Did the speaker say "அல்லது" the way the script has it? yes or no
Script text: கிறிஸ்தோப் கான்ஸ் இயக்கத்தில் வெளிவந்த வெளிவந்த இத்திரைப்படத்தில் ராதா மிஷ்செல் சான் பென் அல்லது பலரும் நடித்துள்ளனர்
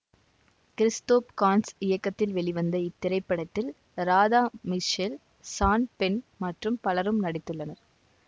no